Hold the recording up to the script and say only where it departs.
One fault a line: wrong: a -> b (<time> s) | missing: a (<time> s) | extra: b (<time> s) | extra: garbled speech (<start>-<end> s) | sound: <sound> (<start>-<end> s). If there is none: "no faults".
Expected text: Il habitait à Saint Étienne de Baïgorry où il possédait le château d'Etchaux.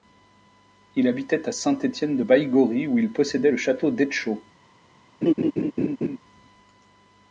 sound: laugh (5.2-6.2 s)